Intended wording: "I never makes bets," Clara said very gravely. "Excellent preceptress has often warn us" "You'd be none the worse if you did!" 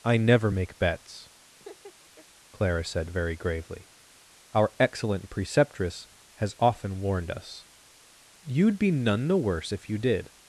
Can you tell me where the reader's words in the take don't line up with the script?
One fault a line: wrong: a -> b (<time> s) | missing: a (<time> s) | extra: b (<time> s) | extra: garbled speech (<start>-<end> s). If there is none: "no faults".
wrong: makes -> make (0.5 s)
extra: Our (4.5 s)
wrong: warn -> warned (7.0 s)